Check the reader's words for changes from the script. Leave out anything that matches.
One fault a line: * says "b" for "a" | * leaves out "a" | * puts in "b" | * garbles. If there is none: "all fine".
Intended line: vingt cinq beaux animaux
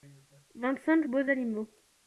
all fine